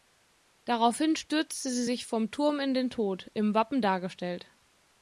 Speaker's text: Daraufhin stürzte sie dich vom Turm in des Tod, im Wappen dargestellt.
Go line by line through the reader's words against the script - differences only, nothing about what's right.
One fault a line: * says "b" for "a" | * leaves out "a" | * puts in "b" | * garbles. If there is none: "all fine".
* says "sich" for "dich"
* says "den" for "des"